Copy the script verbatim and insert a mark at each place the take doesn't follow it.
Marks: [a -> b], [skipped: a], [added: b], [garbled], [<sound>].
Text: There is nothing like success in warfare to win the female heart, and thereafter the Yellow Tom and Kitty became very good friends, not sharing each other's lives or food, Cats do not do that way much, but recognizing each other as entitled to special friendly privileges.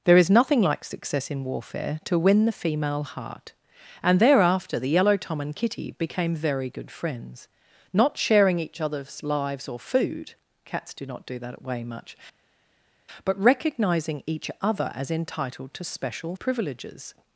There is nothing like success in warfare to win the female heart, and thereafter the Yellow Tom and Kitty became very good friends, not sharing each other's lives or food, Cats do not do that way much, but recognizing each other as entitled to special [skipped: friendly] privileges.